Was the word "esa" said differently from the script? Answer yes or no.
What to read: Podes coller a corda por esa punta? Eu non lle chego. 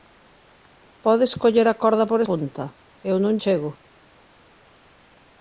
yes